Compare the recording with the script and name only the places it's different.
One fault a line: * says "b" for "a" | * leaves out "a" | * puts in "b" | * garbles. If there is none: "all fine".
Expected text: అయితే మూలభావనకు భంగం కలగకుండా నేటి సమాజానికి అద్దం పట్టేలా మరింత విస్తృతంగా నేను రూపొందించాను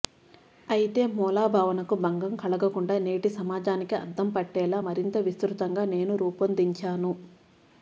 all fine